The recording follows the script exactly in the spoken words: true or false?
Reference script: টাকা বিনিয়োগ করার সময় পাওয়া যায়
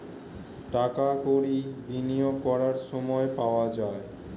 false